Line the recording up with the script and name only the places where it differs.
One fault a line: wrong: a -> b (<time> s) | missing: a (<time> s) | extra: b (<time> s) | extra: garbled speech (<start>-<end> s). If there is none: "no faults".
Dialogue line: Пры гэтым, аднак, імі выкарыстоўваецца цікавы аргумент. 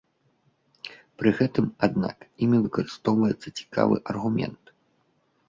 no faults